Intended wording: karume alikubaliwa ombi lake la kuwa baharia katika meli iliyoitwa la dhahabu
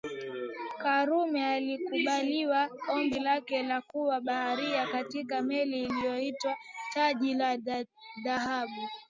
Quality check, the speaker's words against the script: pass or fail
fail